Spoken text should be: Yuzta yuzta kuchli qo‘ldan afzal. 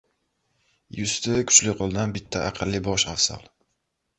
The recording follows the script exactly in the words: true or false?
false